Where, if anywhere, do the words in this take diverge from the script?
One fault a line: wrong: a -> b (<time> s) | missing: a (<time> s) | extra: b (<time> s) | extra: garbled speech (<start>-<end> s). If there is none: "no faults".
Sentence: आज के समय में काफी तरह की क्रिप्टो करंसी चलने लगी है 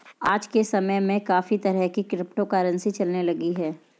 no faults